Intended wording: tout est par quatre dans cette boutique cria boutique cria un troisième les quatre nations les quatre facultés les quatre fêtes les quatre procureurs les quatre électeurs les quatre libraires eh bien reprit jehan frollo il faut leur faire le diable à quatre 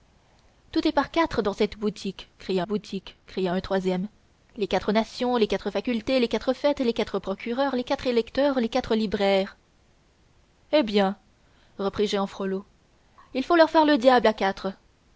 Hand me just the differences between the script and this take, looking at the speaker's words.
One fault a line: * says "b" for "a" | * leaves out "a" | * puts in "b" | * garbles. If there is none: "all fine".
all fine